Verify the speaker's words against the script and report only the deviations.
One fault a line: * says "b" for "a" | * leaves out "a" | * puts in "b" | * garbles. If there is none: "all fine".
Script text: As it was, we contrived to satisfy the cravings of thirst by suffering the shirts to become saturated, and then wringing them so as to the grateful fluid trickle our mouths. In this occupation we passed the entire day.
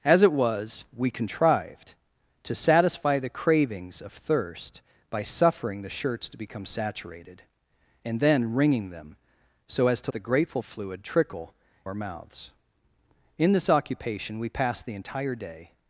all fine